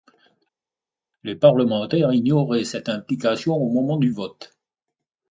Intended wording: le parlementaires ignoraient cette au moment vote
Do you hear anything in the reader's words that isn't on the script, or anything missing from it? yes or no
yes